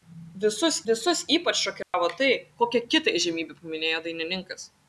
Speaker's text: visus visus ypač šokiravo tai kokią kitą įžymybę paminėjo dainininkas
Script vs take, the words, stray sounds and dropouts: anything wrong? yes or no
yes